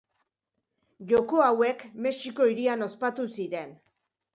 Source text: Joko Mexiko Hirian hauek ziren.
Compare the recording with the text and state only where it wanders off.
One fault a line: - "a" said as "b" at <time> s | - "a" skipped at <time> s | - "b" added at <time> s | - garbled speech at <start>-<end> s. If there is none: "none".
- "hauek" added at 1.5 s
- "hauek" said as "ospatu" at 2.9 s